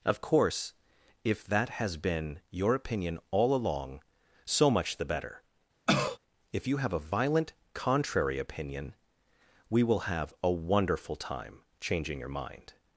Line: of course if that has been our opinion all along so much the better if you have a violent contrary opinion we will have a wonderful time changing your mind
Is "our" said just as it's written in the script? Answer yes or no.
no